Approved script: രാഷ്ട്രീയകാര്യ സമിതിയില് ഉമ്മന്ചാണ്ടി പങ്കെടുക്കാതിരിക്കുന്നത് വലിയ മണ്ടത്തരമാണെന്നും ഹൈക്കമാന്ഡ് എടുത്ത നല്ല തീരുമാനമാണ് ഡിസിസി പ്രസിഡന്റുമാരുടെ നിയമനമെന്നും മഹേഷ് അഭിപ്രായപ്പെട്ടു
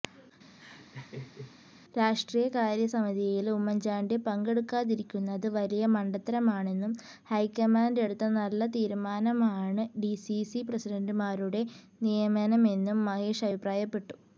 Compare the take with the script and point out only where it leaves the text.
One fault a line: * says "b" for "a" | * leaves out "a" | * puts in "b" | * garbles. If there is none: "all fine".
all fine